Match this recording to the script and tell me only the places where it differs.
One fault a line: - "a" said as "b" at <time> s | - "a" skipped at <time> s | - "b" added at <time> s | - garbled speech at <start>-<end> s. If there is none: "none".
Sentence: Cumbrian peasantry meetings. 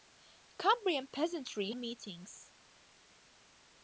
none